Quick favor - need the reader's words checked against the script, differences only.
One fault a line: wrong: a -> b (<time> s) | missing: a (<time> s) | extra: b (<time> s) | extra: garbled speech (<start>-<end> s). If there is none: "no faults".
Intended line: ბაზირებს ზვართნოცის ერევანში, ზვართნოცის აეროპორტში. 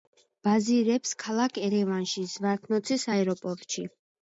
wrong: ზვართნოცის -> ქალაქ (1.2 s)